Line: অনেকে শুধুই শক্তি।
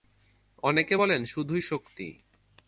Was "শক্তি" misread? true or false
false